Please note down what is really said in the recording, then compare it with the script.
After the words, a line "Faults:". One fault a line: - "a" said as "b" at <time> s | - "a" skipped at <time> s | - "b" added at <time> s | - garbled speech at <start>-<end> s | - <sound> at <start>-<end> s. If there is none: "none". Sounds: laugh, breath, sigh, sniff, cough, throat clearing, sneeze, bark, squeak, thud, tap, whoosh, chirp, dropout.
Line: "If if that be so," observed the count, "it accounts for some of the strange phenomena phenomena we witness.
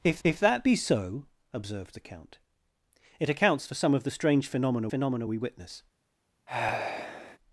"If if that be so," observed the count, "it accounts for some of the strange phenomena phenomena we witness.
Faults:
- sigh at 6.5-7.4 s